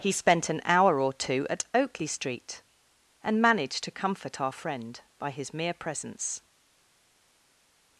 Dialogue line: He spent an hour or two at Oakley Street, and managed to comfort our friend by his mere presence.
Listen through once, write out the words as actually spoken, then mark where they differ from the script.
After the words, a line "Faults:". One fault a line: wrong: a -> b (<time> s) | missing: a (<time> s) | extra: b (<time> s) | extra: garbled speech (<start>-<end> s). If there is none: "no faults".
He spent an hour or two at Oakley Street, and managed to comfort our friend by his mere presence.
Faults:
no faults